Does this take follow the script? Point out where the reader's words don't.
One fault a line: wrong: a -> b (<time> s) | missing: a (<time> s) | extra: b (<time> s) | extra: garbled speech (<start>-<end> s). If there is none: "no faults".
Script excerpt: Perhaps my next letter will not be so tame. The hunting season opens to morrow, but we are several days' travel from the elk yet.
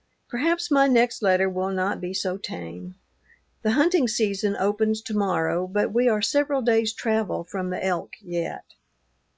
no faults